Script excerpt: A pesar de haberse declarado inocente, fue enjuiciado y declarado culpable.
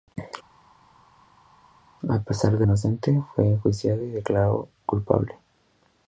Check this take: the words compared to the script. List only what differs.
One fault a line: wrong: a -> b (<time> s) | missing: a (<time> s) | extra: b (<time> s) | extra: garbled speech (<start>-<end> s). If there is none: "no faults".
missing: haberse declarado (2.6 s)